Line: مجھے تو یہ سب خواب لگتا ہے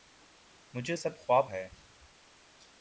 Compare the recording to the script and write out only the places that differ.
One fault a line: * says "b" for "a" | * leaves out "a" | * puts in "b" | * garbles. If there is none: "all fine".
* leaves out "تو یہ"
* leaves out "لگتا"